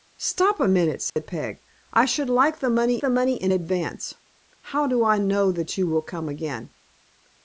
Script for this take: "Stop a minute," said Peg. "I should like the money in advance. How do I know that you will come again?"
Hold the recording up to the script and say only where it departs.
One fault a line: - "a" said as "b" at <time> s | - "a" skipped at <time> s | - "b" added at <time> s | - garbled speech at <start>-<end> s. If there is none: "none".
- "the money" added at 3.0 s